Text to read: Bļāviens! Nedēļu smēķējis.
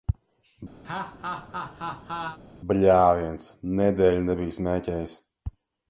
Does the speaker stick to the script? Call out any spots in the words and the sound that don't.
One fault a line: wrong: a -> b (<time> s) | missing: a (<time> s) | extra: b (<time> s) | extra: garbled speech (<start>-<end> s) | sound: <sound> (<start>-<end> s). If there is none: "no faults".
sound: laugh (0.8-2.4 s)
extra: nebiju (4.3 s)